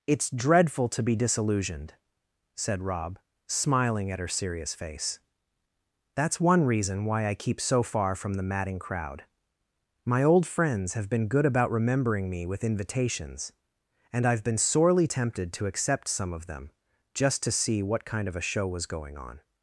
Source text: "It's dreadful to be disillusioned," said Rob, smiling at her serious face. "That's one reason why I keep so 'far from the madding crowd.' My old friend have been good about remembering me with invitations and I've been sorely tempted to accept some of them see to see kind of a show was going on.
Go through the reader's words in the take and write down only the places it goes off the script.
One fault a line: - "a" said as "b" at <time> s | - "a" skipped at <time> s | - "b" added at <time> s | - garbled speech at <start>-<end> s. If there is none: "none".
- "friend" said as "friends" at 10.5 s
- "see" said as "just" at 17.1 s
- "what" added at 17.8 s